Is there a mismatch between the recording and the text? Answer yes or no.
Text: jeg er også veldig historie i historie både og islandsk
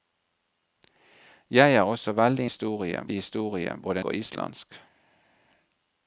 no